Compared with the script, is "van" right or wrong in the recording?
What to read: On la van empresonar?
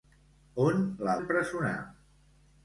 wrong